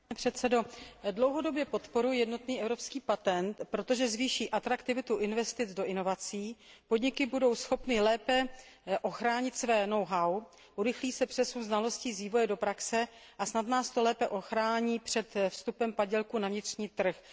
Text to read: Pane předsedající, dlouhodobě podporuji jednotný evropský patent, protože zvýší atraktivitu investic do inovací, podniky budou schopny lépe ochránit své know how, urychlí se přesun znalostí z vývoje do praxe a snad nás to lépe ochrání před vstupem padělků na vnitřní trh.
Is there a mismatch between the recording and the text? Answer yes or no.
no